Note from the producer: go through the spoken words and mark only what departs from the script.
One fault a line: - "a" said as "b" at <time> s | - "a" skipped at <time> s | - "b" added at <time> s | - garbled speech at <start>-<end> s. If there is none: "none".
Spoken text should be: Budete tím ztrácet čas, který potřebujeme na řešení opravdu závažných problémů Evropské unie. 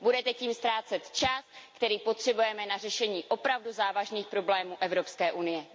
none